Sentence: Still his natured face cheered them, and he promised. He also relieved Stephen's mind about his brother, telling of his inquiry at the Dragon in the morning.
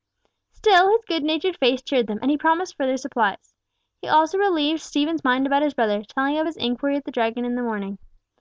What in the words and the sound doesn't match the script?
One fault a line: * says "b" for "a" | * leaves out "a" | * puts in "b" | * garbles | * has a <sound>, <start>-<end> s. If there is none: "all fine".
* puts in "good"
* puts in "further supplies"